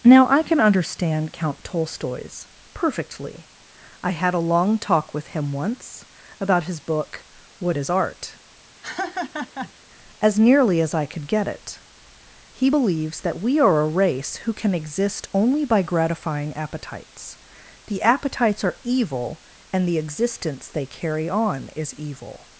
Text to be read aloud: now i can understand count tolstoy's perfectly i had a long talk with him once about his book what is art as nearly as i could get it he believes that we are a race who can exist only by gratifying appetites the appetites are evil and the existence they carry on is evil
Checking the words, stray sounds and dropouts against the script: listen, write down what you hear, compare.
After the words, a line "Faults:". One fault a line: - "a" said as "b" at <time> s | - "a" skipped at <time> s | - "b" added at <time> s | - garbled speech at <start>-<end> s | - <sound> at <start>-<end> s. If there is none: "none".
now i can understand count tolstoy's perfectly i had a long talk with him once about his book what is art as nearly as i could get it he believes that we are a race who can exist only by gratifying appetites the appetites are evil and the existence they carry on is evil
Faults:
- laugh at 8.8-9.7 s